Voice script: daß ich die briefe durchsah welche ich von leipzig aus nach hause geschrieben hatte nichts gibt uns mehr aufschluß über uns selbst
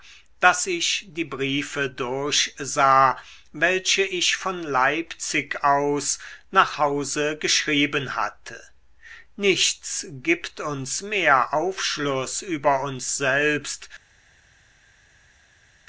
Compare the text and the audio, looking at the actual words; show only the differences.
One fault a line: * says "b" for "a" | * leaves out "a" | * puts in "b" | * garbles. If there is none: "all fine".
all fine